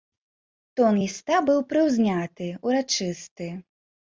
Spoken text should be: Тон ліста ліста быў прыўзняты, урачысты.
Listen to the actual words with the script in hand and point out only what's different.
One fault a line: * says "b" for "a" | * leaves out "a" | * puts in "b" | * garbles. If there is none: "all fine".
* leaves out "ліста"